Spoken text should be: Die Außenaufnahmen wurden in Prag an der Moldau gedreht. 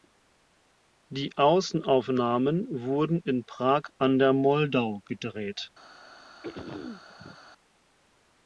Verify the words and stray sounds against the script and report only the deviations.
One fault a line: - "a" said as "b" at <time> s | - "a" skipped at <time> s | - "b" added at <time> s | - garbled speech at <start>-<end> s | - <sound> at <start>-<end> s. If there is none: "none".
- throat clearing at 6.4-7.4 s